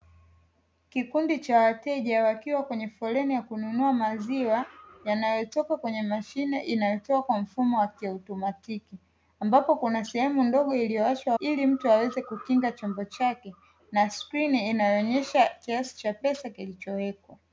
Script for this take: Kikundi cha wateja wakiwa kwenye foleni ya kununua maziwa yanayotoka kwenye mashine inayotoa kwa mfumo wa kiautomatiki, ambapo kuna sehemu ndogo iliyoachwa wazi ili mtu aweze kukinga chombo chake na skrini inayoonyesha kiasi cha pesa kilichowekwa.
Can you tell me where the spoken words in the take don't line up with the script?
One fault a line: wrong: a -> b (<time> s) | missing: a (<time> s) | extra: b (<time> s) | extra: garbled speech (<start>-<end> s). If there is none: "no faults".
missing: wazi (11.3 s)